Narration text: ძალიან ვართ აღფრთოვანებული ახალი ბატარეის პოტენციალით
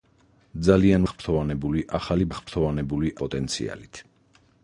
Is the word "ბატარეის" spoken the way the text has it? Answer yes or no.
no